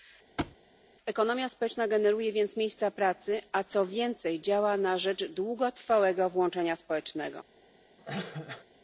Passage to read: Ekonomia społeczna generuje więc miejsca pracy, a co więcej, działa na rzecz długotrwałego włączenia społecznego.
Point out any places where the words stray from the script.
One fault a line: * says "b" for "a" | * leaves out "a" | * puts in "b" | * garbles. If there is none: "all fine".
all fine